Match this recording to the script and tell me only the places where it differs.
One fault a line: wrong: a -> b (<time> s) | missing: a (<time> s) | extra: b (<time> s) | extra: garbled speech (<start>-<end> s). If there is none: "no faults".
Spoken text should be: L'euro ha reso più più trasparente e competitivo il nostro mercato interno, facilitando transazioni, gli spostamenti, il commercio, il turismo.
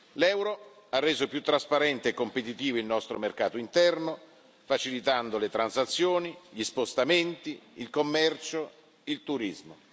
missing: più (1.4 s)
extra: le (5.4 s)